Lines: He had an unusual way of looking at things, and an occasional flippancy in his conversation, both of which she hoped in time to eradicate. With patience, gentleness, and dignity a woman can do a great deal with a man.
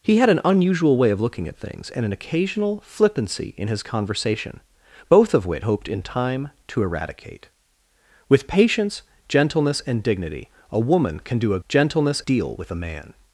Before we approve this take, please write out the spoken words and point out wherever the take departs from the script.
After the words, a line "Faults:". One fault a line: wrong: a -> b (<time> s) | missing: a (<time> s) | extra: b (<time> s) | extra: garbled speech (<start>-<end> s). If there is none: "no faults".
He had an unusual way of looking at things, and an occasional flippancy in his conversation, both of which hoped in time to eradicate. With patience, gentleness, and dignity a woman can do a gentleness deal with a man.
Faults:
missing: she (5.7 s)
wrong: great -> gentleness (11.7 s)